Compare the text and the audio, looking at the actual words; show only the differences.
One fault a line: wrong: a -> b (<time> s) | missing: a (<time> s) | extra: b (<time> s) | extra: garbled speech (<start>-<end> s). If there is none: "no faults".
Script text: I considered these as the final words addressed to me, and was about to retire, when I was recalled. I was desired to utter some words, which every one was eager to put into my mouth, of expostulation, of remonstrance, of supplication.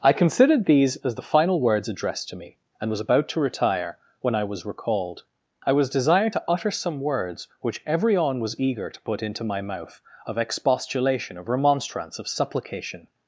wrong: one -> on (8.1 s)